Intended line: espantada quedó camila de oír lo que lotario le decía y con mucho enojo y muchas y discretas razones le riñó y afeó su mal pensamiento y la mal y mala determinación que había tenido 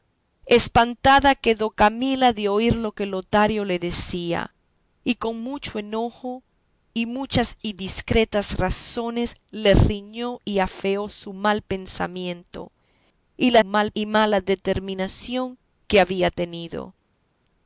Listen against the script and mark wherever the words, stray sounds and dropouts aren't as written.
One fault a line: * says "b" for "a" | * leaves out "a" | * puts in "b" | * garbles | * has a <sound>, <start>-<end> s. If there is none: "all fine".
all fine